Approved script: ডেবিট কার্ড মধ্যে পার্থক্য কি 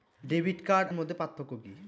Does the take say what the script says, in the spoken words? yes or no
yes